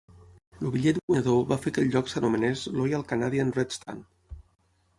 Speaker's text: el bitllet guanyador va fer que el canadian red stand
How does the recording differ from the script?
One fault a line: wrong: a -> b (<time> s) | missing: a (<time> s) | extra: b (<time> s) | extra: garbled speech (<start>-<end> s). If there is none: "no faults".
extra: lloc s'anomenés loyal (1.9 s)